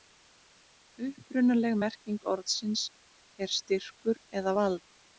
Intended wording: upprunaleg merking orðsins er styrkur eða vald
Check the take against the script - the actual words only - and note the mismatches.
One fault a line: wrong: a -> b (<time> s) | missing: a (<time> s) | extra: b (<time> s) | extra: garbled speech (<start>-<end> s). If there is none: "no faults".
no faults